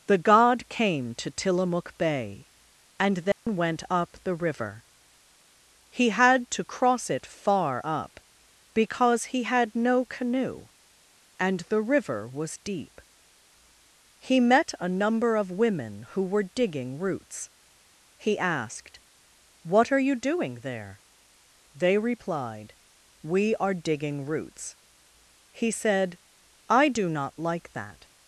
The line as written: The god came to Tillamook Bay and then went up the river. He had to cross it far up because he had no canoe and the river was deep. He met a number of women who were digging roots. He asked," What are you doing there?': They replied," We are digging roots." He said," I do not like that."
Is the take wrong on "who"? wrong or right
right